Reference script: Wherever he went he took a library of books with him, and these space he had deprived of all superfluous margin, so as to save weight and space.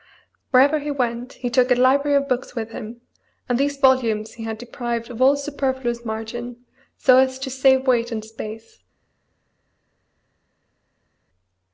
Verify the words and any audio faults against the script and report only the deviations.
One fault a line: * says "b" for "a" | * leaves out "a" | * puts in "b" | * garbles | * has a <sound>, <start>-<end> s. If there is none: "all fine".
* says "volumes" for "space"